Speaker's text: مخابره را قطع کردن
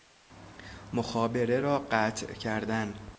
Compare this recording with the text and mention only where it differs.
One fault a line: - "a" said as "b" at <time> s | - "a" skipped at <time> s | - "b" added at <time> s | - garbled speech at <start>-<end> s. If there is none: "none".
none